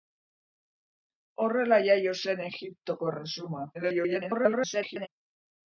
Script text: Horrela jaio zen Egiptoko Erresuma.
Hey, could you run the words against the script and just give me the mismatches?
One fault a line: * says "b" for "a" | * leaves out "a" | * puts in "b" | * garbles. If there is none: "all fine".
* garbles